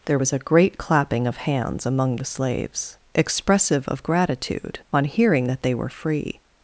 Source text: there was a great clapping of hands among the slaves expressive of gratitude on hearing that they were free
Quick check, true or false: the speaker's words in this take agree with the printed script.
true